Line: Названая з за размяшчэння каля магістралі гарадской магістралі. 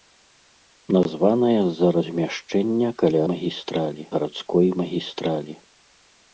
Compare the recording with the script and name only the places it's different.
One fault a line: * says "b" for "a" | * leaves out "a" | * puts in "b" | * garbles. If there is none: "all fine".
all fine